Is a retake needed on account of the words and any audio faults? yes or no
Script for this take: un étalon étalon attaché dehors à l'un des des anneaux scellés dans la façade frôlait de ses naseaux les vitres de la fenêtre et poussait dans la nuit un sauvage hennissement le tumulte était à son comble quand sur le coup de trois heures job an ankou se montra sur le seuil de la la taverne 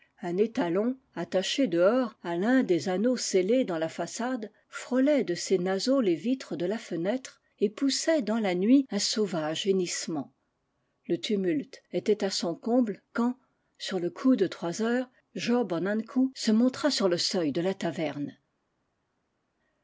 yes